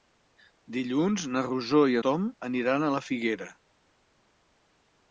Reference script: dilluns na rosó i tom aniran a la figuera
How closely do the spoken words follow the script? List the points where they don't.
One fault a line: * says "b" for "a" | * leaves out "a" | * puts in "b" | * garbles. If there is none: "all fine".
all fine